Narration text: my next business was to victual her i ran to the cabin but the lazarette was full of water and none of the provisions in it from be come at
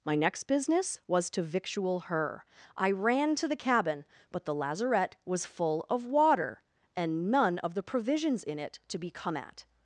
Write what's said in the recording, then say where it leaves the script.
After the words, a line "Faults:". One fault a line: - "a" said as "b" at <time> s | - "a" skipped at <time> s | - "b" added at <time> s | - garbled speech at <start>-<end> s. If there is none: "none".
my next business was to victual her i ran to the cabin but the lazarette was full of water and none of the provisions in it to be come at
Faults:
- "from" said as "to" at 8.9 s